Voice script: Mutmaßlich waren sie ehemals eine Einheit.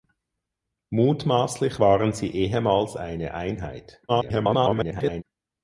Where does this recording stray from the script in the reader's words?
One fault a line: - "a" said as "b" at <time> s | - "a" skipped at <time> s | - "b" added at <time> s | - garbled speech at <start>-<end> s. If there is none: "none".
- garbled speech at 4.1-5.2 s